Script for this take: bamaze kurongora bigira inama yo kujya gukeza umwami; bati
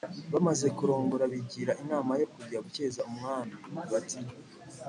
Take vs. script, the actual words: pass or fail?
pass